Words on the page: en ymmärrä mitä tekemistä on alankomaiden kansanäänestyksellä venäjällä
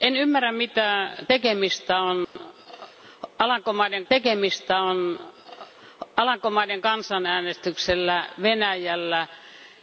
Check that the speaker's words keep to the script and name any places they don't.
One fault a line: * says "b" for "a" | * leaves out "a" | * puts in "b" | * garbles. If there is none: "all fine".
* puts in "tekemistä on alankomaiden"